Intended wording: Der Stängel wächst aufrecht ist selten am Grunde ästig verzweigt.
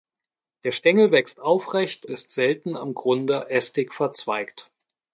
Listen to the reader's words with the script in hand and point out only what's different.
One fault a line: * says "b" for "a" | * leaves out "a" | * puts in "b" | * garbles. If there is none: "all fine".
all fine